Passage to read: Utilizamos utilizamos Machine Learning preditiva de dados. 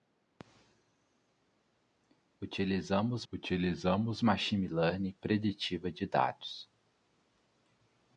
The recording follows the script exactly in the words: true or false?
true